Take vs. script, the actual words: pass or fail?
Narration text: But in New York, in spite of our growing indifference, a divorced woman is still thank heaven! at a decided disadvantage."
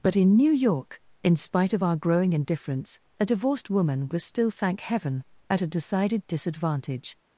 fail